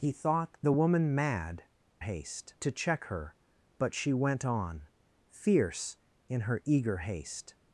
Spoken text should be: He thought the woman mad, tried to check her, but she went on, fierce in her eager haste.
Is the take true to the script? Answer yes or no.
no